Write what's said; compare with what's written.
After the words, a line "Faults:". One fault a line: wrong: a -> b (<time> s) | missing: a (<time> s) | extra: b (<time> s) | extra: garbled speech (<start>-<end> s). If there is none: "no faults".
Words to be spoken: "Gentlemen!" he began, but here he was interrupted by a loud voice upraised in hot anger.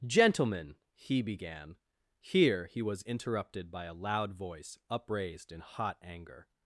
"Gentlemen!" he began, here he was interrupted by a loud voice upraised in hot anger.
Faults:
missing: but (1.8 s)